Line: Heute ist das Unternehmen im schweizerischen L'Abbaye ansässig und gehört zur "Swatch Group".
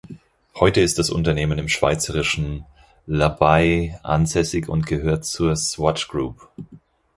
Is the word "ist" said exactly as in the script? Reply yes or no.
yes